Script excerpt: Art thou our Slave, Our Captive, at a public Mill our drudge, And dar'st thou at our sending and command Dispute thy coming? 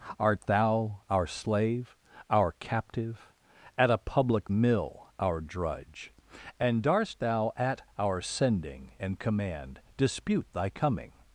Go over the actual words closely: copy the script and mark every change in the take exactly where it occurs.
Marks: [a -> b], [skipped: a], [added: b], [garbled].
Art thou our Slave, Our Captive, at a public Mill our drudge, And dar'st thou at our sending and command Dispute thy coming?